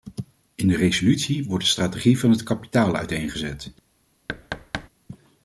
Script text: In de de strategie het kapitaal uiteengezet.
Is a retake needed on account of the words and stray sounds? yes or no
yes